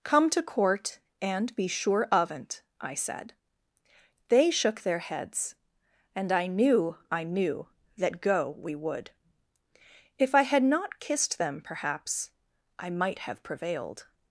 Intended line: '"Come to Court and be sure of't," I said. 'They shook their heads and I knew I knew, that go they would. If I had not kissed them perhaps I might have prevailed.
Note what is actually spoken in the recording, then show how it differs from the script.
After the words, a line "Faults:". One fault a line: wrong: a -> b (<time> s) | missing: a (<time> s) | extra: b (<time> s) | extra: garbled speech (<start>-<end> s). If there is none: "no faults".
'"Come to Court and be sure of't," I said. 'They shook their heads and I knew I knew, that go we would. If I had not kissed them perhaps I might have prevailed.
Faults:
wrong: they -> we (8.5 s)